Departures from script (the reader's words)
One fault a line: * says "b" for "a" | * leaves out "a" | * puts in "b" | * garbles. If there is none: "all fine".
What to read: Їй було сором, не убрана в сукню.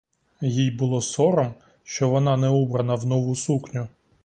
* puts in "що вона"
* puts in "нову"